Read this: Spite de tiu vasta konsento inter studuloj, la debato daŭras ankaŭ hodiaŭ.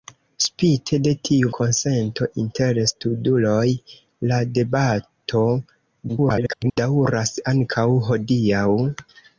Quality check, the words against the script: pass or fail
fail